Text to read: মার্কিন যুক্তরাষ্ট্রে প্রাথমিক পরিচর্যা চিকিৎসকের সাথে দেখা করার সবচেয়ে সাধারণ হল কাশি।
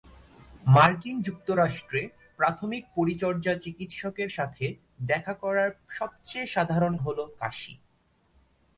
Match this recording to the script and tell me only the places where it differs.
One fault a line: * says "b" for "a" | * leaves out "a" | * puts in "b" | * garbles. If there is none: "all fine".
all fine